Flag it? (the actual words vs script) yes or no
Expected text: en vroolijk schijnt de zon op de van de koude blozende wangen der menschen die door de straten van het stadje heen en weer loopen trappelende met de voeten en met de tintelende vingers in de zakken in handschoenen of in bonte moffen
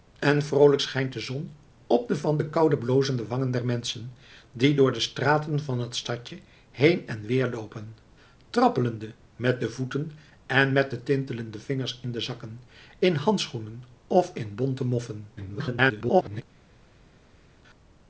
yes